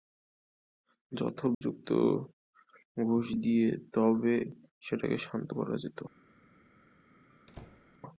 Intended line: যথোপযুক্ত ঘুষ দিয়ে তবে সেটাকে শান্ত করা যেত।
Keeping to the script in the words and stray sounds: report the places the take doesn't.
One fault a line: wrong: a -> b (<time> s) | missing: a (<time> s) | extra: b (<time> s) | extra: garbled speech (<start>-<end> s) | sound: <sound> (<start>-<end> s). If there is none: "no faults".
sound: dropout (1.5-1.6 s)
sound: squeak (7.3-8.0 s)